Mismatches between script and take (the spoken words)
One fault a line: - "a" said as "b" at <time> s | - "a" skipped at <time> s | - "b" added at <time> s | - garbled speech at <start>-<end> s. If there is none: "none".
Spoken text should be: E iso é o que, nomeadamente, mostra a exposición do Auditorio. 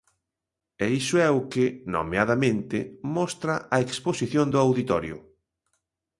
none